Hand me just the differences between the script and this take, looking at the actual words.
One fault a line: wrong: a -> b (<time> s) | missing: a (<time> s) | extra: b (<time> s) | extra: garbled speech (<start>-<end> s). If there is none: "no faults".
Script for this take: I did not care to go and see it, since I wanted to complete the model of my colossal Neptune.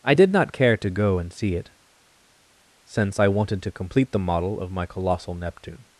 no faults